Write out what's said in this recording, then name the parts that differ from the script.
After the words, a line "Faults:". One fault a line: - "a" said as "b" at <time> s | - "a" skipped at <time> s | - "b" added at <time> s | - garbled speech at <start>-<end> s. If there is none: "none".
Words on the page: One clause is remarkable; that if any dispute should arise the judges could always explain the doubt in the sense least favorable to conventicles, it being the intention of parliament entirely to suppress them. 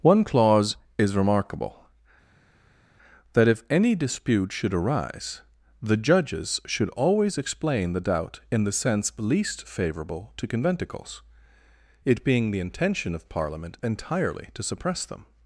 One clause is remarkable; that if any dispute should arise the judges should always explain the doubt in the sense least favorable to conventicles, it being the intention of parliament entirely to suppress them.
Faults:
- "could" said as "should" at 6.7 s